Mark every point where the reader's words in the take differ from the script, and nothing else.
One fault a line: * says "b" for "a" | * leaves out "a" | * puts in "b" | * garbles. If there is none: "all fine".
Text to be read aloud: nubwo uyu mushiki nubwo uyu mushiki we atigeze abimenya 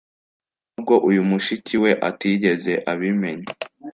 * leaves out "nubwo uyu mushiki"